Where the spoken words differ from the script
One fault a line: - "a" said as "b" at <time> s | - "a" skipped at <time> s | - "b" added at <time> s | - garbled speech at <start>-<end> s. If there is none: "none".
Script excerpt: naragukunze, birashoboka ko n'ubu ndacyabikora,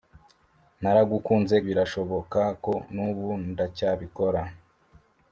none